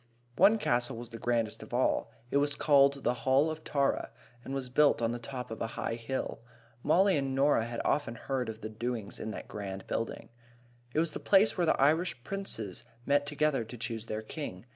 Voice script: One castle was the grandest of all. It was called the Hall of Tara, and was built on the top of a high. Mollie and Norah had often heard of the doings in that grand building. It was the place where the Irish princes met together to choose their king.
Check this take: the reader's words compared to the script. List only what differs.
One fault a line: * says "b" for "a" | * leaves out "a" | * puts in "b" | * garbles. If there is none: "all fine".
* puts in "hill"